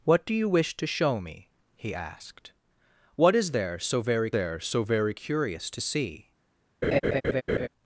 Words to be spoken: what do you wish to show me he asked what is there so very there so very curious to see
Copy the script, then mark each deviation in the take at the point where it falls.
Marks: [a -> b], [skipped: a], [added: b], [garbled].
what do you wish to show me he asked what is there so very there so very curious to see